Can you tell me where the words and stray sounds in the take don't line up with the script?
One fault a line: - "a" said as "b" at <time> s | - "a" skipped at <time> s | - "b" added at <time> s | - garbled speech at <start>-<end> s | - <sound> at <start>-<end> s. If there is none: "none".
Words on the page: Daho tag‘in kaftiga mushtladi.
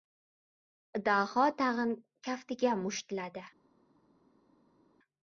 none